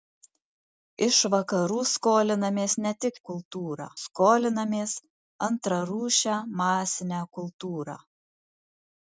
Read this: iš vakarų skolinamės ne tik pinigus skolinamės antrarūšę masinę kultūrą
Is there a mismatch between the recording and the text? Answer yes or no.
yes